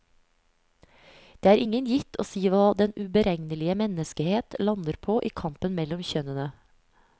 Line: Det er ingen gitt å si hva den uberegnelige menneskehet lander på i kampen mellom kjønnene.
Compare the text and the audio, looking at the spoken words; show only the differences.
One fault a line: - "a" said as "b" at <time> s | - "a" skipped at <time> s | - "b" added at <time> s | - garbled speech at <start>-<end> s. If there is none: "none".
none